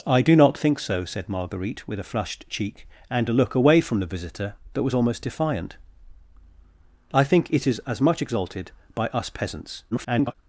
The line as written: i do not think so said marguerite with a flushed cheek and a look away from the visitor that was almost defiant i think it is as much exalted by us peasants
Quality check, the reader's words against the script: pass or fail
fail